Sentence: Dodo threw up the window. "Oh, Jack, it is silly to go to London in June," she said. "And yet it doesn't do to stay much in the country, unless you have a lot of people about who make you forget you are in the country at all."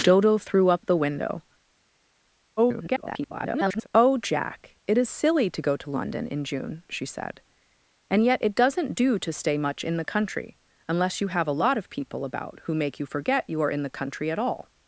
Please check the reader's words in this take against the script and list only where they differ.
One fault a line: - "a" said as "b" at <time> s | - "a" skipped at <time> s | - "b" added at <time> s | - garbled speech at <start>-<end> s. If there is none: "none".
- garbled speech at 2.6-3.9 s